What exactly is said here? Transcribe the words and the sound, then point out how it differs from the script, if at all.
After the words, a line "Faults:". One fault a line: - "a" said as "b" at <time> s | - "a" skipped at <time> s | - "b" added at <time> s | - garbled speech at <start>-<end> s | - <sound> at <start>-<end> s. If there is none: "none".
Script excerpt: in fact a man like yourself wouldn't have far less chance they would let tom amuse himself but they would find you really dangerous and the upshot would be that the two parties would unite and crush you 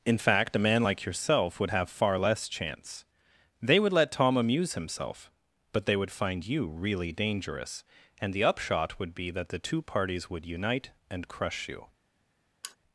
in fact a man like yourself would have far less chance they would let tom amuse himself but they would find you really dangerous and the upshot would be that the two parties would unite and crush you
Faults:
- "wouldn't" said as "would" at 1.6 s
- sigh at 12.6-12.8 s